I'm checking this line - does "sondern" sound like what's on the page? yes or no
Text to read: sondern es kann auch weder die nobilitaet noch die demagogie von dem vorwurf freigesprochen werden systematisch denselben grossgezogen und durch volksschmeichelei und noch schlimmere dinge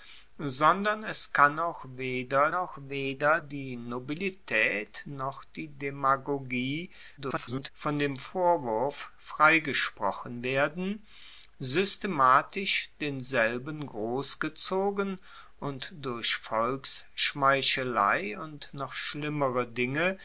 yes